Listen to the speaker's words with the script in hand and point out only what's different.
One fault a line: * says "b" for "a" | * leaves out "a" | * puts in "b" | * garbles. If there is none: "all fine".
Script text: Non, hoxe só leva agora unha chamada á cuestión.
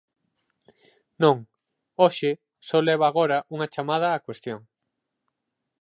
all fine